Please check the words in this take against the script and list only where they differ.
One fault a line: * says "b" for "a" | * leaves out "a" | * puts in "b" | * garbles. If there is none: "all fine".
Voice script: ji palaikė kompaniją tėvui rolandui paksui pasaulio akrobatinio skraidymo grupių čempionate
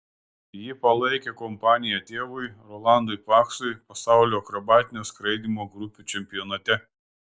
all fine